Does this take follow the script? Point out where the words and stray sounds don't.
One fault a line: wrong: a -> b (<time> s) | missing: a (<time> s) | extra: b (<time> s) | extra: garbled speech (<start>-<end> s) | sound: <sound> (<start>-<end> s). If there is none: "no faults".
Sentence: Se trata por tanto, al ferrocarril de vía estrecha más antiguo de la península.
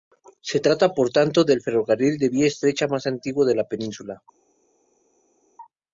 wrong: al -> del (1.4 s)